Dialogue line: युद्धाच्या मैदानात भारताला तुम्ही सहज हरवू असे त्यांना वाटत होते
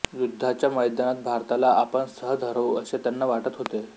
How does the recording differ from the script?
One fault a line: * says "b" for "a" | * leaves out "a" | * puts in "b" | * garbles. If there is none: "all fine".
* says "आपण" for "तुम्ही"